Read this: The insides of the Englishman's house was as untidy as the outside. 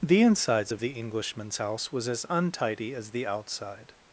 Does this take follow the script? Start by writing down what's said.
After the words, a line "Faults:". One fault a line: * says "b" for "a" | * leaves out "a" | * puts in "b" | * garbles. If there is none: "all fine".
The insides of the Englishman's house was as untidy as the outside.
Faults:
all fine